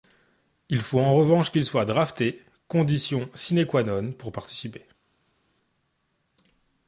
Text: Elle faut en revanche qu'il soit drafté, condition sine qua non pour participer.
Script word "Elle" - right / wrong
wrong